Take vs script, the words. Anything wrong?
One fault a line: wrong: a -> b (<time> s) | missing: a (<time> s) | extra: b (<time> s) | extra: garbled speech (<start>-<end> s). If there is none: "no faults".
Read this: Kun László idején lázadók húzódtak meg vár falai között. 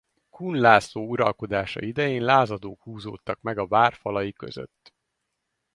extra: uralkodása (1.1 s)
extra: a (3.6 s)